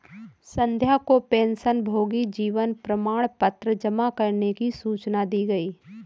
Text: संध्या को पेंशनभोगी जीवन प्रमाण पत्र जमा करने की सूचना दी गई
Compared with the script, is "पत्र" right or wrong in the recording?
right